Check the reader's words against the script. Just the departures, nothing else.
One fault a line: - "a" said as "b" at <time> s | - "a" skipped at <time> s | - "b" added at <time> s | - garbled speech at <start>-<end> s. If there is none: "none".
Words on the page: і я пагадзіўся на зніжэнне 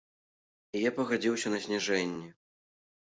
none